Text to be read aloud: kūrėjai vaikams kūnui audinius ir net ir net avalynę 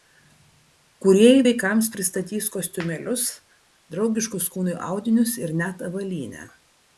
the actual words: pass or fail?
fail